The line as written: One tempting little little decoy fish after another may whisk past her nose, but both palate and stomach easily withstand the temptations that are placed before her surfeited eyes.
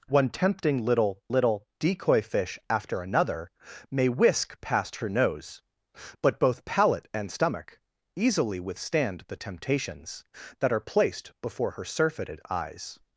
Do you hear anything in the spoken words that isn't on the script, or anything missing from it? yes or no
no